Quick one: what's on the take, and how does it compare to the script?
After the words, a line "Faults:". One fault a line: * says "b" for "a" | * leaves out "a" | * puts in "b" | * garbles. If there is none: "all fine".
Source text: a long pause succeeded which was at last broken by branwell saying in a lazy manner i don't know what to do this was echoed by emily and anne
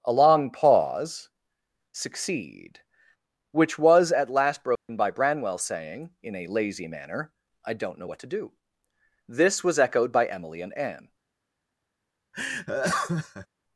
a long pause succeed which was at last broken by branwell saying in a lazy manner i don't know what to do this was echoed by emily and anne
Faults:
* says "succeed" for "succeeded"